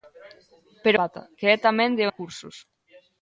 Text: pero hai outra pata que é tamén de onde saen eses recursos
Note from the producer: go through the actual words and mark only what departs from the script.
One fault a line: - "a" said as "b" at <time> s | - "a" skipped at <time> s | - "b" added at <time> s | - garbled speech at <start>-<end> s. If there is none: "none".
- "hai outra" skipped at 1.0 s
- "onde saen eses" skipped at 2.0 s